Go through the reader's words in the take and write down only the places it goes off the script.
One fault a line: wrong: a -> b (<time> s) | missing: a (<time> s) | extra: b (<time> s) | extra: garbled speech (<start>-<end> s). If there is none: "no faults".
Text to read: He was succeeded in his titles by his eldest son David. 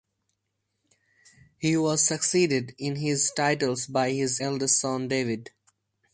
no faults